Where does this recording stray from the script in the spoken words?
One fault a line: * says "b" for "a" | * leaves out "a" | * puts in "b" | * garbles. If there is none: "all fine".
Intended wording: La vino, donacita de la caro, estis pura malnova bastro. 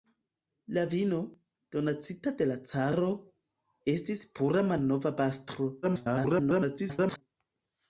* garbles